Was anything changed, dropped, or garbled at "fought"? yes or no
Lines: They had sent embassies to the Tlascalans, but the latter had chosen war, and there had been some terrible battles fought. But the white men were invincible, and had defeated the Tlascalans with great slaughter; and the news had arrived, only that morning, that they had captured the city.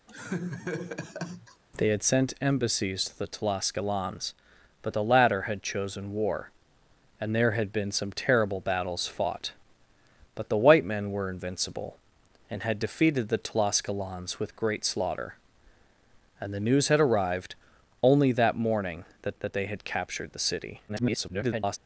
no